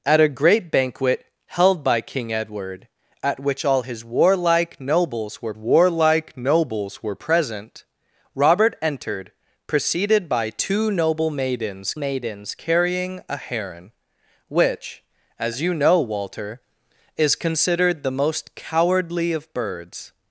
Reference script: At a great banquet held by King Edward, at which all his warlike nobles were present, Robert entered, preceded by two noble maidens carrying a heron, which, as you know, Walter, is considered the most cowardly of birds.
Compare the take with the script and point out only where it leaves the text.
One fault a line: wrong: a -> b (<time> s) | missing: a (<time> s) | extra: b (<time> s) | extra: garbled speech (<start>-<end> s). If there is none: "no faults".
extra: warlike nobles were (5.5 s)
extra: maidens (11.9 s)